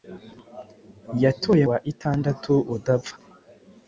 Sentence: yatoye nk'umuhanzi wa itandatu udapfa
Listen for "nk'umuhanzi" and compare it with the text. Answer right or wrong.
wrong